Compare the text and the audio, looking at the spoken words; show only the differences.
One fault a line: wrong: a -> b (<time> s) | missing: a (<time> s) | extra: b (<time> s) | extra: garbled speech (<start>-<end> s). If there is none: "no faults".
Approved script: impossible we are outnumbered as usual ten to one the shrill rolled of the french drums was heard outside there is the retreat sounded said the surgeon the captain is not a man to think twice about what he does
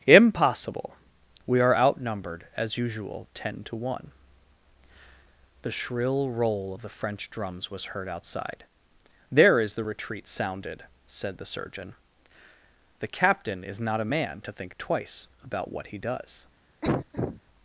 wrong: rolled -> roll (6.3 s)